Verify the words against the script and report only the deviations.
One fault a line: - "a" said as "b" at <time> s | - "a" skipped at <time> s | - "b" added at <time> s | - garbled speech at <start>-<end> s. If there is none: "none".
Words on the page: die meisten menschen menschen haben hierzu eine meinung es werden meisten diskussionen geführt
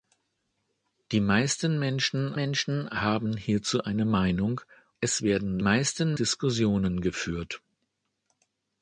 none